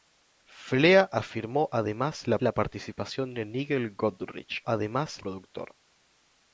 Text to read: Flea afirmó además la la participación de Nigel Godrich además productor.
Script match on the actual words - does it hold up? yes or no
yes